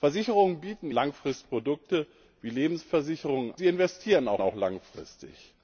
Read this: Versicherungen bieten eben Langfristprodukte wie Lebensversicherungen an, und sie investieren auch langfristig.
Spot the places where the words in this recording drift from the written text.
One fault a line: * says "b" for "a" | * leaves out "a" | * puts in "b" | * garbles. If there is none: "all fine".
* leaves out "eben"
* leaves out "an und"
* puts in "auch"